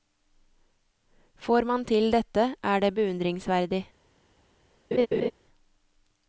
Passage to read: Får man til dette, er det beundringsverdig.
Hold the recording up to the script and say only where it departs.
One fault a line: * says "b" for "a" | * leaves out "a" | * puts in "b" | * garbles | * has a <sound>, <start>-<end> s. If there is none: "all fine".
* has a laugh, 4.9-5.3 s